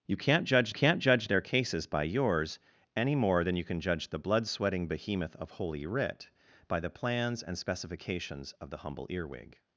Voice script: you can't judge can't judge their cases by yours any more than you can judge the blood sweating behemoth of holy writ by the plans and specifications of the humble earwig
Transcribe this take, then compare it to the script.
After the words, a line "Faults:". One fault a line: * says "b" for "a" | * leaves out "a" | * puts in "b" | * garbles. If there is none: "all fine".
you can't judge can't judge their cases by yours any more than you can judge the blood sweating behemoth of holy writ by the plans and specifications of the humble earwig
Faults:
all fine